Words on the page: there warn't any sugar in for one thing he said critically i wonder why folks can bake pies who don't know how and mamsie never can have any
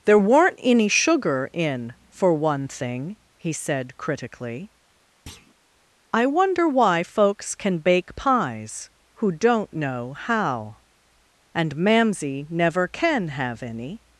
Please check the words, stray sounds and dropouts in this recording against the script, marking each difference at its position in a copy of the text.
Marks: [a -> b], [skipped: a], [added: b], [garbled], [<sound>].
there [warn't -> weren't] any sugar in for one thing he said critically [thud] i wonder why folks can bake pies who don't know how and mamsie never can have any